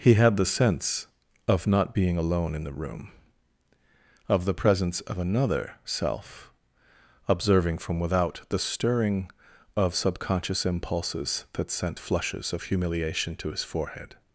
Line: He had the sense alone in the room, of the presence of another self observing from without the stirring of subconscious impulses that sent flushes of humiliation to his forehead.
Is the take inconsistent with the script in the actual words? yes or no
yes